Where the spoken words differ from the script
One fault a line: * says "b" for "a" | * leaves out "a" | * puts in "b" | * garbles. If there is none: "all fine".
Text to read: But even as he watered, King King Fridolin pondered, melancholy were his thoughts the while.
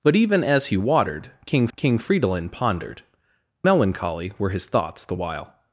all fine